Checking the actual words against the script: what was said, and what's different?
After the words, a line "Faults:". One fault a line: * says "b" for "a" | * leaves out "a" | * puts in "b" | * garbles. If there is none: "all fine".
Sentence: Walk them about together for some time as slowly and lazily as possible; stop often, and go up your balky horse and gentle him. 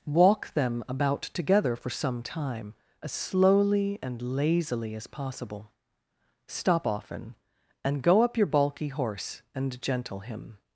Walk them about together for some time as slowly and lazily as possible; stop often, and go up your balky horse and gentle him.
Faults:
all fine